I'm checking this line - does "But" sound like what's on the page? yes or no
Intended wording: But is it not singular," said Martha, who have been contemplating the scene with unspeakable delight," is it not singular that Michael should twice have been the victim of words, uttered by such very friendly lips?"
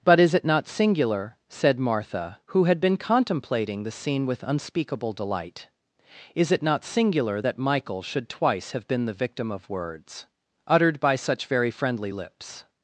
yes